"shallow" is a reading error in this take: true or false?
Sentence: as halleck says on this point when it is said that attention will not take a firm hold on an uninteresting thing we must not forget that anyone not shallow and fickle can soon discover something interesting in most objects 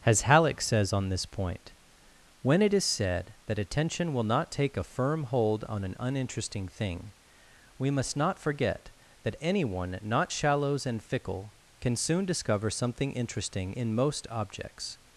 true